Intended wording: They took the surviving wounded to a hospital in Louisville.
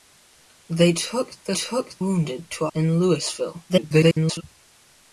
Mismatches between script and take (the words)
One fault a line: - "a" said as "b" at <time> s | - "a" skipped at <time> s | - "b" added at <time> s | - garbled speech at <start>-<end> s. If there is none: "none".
- "surviving" said as "took" at 1.5 s
- "hospital" skipped at 2.7 s
- garbled speech at 3.7-4.4 s